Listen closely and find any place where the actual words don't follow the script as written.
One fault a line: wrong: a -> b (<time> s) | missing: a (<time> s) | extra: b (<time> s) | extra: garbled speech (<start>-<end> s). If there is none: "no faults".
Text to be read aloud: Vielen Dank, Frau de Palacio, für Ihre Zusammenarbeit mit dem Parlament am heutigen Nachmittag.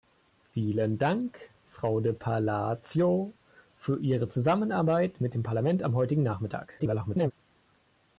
extra: garbled speech (6.8-7.3 s)